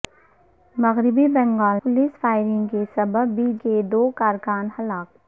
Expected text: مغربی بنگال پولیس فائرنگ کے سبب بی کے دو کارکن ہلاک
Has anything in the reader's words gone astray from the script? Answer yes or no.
no